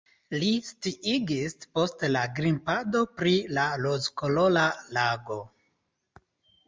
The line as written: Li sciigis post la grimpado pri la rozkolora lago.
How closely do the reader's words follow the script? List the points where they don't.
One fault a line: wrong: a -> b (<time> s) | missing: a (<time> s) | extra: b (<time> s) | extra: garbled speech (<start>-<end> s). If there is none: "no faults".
no faults